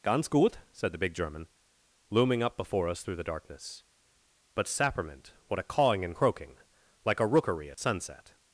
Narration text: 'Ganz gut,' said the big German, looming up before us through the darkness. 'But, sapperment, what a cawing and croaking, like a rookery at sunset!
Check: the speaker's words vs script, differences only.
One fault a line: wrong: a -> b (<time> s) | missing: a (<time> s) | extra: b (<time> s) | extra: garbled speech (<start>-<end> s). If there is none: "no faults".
no faults